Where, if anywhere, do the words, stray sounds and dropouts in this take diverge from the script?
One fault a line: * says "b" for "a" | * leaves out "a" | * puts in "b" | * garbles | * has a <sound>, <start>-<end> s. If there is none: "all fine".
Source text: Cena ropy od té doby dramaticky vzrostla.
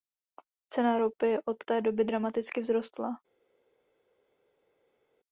all fine